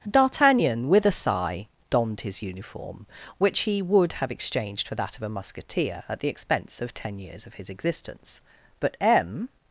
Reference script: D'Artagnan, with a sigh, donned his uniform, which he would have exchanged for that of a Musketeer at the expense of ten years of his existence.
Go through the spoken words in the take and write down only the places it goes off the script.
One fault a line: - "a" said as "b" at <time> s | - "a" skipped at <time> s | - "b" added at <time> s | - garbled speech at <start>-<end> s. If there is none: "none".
- "But M" added at 8.8 s